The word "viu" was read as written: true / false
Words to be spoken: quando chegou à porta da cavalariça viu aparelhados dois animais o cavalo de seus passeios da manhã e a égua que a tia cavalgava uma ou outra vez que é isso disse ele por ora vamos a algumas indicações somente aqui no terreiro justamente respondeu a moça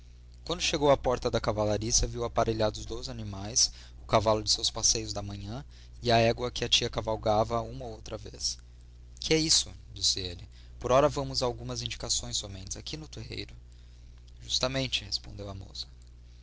true